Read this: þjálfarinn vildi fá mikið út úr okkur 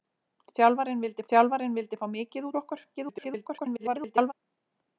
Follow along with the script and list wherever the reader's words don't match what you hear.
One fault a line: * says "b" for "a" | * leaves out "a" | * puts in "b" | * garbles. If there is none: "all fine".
* puts in "þjálfarinn vildi"
* leaves out "út"
* garbles